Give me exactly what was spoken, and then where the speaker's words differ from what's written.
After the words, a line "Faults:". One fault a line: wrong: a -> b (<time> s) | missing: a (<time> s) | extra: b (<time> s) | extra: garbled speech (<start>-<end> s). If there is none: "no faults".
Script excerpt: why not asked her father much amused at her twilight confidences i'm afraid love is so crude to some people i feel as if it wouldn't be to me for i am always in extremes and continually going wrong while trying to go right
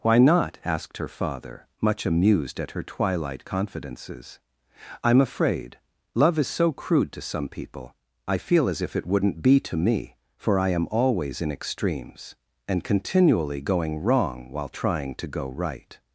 why not asked her father much amused at her twilight confidences i'm afraid love is so crude to some people i feel as if it wouldn't be to me for i am always in extremes and continually going wrong while trying to go right
Faults:
no faults